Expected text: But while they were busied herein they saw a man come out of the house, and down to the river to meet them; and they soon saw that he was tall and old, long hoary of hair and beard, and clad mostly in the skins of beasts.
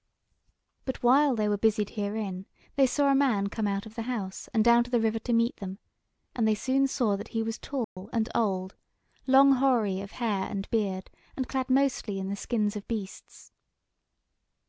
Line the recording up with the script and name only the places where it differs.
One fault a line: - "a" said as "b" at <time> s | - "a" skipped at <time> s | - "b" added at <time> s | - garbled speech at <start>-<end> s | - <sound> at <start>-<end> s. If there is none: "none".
- dropout at 7.8-8.0 s